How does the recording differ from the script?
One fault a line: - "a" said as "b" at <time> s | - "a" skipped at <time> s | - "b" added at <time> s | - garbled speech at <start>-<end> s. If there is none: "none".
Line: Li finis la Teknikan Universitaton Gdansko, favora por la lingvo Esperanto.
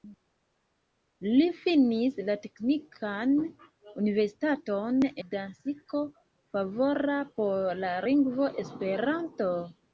none